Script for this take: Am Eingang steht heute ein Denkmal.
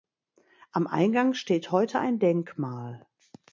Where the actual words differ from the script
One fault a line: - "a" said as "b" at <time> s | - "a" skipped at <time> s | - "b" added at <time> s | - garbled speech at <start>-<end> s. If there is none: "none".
none